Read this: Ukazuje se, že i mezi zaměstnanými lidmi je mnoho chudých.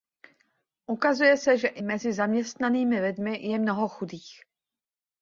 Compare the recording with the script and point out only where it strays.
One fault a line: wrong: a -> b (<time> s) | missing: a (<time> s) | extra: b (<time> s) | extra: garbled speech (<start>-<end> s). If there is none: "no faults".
no faults